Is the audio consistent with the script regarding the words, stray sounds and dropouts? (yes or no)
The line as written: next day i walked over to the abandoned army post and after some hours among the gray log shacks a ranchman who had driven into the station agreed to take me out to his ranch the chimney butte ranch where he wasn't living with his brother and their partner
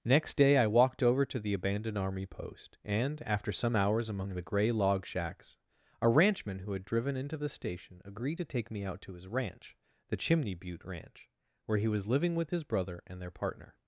no